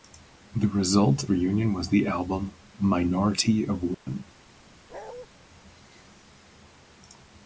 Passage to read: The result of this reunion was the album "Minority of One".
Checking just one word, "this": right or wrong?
wrong